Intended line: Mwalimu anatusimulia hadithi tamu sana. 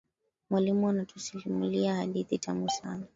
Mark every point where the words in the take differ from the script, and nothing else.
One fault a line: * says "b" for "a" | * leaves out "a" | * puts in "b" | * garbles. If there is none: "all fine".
all fine